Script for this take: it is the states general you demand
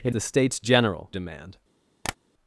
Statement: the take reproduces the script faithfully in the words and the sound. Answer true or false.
false